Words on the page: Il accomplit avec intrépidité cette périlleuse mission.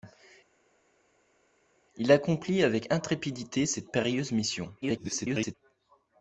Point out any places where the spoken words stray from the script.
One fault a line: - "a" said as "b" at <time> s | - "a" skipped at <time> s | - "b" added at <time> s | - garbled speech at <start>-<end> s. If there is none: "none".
- garbled speech at 4.8-5.5 s